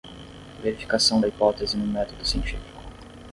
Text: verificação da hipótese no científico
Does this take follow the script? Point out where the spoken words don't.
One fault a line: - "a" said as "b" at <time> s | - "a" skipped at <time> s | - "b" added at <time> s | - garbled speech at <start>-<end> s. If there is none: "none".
- "método" added at 1.9 s